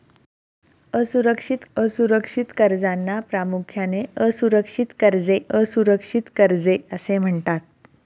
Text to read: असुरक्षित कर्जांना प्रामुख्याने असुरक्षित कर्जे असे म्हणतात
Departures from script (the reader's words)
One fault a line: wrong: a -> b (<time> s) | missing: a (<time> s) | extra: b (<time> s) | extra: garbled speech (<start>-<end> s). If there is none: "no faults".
extra: असुरक्षित (1.8 s)
extra: असुरक्षित कर्जे (5.5 s)